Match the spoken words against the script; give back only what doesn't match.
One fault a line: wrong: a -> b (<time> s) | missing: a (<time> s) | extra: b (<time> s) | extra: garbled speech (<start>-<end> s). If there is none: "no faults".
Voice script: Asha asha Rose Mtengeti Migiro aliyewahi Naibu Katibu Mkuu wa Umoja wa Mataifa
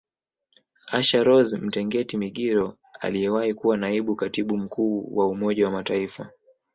missing: asha (1.2 s)
extra: kuwa (3.5 s)